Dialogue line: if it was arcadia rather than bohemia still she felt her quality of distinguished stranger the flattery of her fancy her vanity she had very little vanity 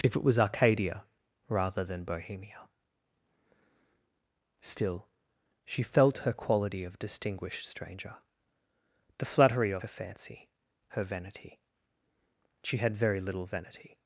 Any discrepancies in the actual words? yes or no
no